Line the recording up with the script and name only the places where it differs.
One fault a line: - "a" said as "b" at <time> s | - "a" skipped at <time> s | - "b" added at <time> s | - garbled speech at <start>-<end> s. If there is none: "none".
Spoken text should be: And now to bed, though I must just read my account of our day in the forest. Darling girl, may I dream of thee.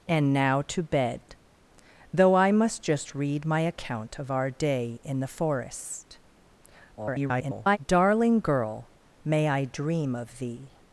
- garbled speech at 7.0-7.8 s